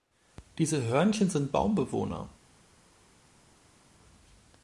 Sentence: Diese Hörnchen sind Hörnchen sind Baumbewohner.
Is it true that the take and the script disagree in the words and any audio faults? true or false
true